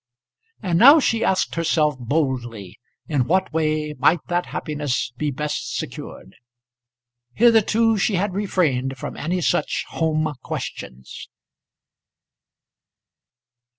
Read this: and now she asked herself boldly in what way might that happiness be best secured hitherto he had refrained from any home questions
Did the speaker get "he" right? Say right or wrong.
wrong